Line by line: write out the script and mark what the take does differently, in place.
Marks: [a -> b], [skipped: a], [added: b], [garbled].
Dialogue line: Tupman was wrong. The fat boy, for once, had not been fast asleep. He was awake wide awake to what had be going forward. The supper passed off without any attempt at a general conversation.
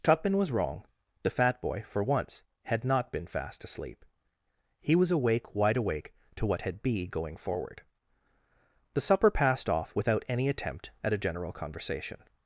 Tupman was wrong. The fat boy, for once, had not been fast asleep. He was awake wide awake to what had be going forward. The supper passed off without any attempt at a general conversation.